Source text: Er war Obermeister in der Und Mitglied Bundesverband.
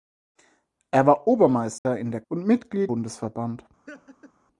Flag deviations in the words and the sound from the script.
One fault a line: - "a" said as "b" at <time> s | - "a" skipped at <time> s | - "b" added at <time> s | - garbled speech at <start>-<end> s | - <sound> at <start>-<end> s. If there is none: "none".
- dropout at 1.8-1.9 s
- laugh at 3.9-4.3 s